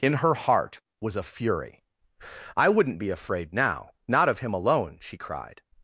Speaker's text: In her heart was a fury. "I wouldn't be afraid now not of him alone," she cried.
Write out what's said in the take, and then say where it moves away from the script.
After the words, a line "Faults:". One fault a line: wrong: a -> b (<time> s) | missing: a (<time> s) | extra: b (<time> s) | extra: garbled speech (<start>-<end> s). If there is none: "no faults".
In her heart was a fury. "I wouldn't be afraid now not of him alone," she cried.
Faults:
no faults